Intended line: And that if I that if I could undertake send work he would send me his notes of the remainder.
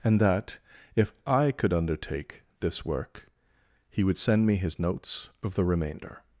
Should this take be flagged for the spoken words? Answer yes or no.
yes